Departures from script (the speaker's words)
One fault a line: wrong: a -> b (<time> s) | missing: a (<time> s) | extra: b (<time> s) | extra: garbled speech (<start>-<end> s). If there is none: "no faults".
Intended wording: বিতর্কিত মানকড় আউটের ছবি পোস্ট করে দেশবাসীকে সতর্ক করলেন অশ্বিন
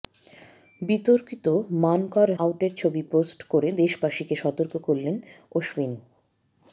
no faults